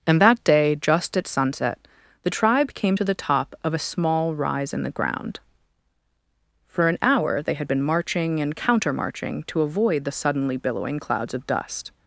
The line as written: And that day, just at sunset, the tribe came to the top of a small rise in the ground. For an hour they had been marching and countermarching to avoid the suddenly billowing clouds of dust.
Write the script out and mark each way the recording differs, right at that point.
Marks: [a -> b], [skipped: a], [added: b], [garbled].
And that day, just at sunset, the tribe came to the top of a small rise in the ground. For an hour they had been marching and countermarching to avoid the suddenly billowing clouds of dust.